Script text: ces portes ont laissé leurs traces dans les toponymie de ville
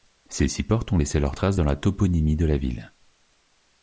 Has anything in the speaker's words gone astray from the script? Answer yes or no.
yes